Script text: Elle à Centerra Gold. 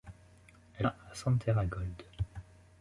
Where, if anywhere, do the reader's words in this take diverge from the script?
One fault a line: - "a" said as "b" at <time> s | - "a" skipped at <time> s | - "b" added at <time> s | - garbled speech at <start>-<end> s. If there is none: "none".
none